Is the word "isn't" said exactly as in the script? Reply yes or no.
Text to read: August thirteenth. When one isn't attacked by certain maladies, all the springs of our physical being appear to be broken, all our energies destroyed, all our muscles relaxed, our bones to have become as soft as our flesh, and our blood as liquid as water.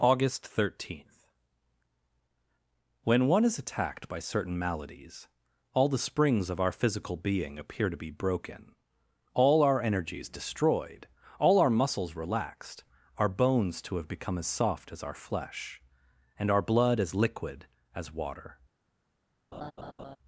no